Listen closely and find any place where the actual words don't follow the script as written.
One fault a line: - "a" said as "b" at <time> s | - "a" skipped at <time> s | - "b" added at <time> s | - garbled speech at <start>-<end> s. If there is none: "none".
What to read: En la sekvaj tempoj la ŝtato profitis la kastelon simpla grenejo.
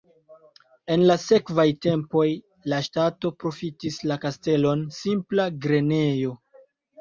none